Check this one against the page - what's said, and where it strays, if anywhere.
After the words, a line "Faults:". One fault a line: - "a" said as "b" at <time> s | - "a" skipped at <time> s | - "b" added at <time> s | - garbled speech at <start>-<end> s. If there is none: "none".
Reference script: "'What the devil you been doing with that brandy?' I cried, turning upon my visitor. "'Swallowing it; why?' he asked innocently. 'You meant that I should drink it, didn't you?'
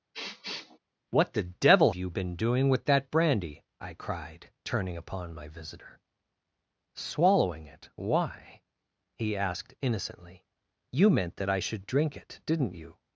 "'What the devil you been doing with that brandy?' I cried, turning upon my visitor. "'Swallowing it; why?' he asked innocently. 'You meant that I should drink it, didn't you?'
Faults:
none